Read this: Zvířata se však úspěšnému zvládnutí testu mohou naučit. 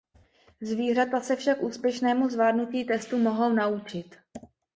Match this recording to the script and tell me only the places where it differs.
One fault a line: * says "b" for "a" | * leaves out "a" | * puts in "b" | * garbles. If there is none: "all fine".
all fine